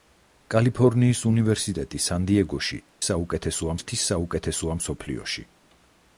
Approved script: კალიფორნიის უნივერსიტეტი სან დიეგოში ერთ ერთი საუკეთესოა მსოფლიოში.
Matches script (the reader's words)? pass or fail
fail